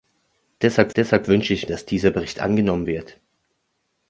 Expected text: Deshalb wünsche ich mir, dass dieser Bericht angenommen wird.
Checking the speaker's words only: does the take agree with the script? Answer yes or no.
no